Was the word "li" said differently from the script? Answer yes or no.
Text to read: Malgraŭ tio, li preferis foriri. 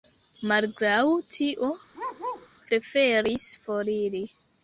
yes